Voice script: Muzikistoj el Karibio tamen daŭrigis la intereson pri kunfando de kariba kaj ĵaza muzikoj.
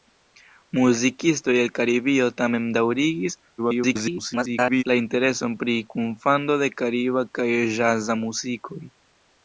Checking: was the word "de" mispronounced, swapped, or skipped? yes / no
no